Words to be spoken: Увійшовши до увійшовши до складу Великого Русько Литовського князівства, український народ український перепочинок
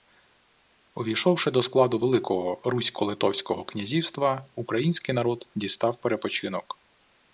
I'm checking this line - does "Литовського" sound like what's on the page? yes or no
yes